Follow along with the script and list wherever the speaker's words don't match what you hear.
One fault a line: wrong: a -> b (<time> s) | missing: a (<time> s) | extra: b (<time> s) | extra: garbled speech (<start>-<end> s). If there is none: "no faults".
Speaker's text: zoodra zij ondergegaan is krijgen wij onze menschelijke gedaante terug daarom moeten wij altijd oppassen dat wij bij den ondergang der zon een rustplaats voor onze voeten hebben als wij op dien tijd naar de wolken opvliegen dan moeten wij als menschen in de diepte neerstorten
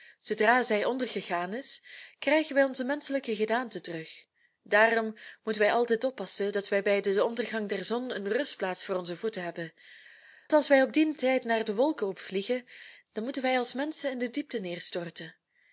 no faults